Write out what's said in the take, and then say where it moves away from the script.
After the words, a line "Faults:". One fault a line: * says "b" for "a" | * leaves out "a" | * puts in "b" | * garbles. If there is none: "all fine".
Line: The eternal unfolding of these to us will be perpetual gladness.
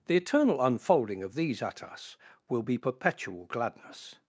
The eternal unfolding of these at us will be perpetual gladness.
Faults:
* says "at" for "to"